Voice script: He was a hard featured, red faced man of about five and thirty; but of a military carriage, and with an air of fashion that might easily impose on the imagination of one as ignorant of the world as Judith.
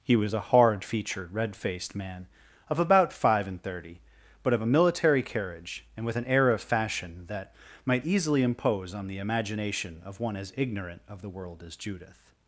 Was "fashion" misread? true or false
false